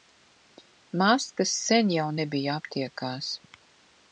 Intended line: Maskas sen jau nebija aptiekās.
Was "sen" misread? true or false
false